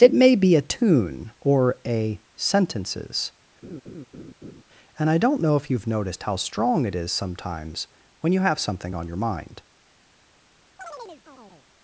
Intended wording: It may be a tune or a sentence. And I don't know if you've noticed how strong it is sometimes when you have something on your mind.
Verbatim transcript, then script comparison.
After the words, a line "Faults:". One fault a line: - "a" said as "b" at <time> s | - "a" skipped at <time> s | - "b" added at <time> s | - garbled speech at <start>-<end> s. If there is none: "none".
It may be a tune or a sentences. And I don't know if you've noticed how strong it is sometimes when you have something on your mind.
Faults:
- "sentence" said as "sentences" at 2.4 s